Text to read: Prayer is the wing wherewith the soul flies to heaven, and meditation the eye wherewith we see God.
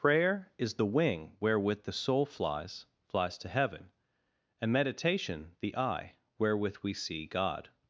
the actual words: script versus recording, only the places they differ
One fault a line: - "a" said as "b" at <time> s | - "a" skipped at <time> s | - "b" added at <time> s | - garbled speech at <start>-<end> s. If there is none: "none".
- "flies" added at 3.1 s